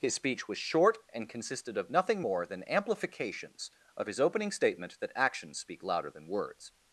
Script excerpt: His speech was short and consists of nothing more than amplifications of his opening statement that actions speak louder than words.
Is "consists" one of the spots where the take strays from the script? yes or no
yes